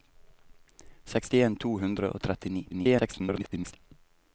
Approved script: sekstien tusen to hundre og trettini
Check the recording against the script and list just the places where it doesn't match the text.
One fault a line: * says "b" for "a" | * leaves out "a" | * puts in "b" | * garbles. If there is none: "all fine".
* leaves out "tusen"
* garbles